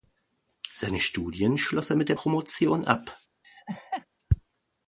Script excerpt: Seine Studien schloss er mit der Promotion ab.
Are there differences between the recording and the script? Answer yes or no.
no